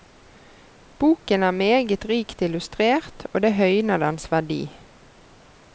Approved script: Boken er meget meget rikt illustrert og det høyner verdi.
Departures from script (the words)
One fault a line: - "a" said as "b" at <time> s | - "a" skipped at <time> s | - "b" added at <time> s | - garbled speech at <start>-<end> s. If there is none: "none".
- "meget" skipped at 2.0 s
- "dens" added at 4.0 s